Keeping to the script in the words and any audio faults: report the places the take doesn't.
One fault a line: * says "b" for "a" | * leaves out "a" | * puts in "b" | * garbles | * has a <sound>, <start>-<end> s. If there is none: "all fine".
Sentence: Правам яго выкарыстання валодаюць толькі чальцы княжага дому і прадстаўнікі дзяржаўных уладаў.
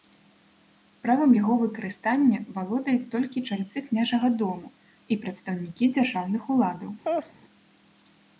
* has a laugh, 7.0-7.3 s